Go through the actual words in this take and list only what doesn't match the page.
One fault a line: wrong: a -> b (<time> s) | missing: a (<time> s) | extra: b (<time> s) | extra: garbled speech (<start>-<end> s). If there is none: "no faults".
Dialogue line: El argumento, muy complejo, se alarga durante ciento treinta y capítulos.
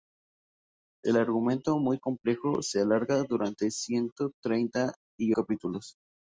no faults